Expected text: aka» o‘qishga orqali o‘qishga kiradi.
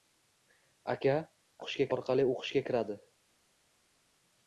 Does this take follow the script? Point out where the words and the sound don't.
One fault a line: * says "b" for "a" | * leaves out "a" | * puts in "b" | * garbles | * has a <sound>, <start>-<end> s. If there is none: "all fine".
all fine